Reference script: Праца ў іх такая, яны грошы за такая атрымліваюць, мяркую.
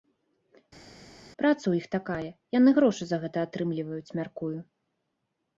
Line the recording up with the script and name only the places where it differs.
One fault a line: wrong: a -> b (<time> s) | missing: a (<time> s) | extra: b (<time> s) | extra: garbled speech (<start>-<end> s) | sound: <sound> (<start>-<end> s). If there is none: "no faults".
wrong: такая -> гэта (3.3 s)